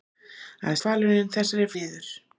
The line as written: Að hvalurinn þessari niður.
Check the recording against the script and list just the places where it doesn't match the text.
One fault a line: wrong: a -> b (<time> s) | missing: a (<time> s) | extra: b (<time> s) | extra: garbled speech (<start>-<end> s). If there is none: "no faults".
no faults